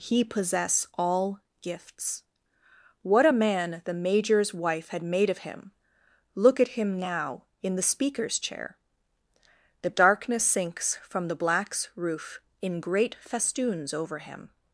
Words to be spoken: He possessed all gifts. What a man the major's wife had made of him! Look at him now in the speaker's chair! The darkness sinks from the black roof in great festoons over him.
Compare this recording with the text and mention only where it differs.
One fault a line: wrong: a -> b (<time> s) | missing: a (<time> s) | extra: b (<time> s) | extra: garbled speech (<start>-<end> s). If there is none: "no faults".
wrong: possessed -> possess (0.2 s)
wrong: black -> blacks (11.4 s)